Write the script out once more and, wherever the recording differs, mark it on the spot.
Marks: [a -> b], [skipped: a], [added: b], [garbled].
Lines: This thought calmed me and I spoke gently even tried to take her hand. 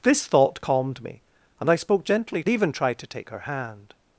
This thought calmed me and I spoke gently even tried to take her hand.